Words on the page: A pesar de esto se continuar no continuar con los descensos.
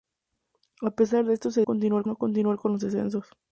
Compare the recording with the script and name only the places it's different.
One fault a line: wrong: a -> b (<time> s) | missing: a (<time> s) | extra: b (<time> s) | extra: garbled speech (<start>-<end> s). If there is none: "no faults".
no faults